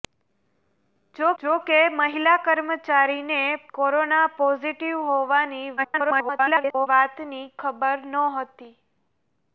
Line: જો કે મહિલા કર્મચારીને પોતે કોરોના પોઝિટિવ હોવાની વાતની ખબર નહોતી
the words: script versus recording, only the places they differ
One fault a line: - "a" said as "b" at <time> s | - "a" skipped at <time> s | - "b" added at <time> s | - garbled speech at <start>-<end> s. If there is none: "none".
- "જો" added at 1.4 s
- "પોતે" skipped at 3.4 s
- garbled speech at 5.8-6.9 s